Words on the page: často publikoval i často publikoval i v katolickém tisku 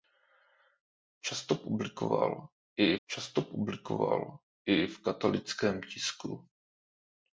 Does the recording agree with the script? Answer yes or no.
yes